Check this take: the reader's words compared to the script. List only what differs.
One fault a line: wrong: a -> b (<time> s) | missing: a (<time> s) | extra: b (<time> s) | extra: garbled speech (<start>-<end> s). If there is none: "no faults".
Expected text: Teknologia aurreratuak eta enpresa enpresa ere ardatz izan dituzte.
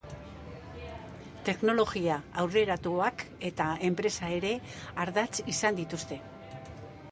missing: enpresa (4.3 s)